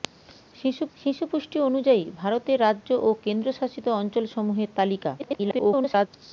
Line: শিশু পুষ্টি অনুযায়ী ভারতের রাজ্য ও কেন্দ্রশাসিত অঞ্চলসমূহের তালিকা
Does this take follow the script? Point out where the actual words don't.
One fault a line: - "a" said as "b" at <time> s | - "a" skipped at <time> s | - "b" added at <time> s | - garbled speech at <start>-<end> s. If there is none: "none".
- "শিশু" added at 1.0 s
- garbled speech at 5.2-6.1 s